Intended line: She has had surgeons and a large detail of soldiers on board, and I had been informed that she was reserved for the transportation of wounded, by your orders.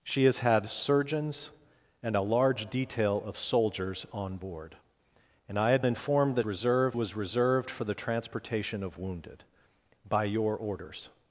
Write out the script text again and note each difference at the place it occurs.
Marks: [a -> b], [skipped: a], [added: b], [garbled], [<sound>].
She has had surgeons and a large detail of soldiers on board, and I had [skipped: been] informed that [she -> reserved] was reserved for the transportation of wounded, by your orders.